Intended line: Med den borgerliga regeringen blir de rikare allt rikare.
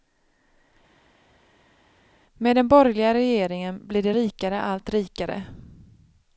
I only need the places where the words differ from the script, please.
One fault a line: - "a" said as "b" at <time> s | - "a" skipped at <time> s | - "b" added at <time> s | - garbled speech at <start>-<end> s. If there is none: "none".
none